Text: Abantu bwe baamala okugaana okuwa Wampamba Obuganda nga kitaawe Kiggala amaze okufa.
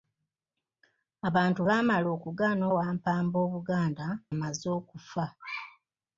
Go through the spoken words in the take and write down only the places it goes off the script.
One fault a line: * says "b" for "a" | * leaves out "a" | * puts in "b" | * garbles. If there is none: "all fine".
* leaves out "bwe"
* leaves out "okuwa"
* leaves out "nga kitaawe Kiggala"